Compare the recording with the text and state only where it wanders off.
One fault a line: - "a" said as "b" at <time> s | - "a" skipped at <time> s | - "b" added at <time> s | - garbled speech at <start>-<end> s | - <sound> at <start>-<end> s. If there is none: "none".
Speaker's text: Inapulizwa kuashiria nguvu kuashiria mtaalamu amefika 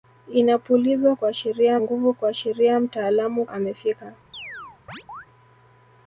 - chirp at 4.3-5.3 s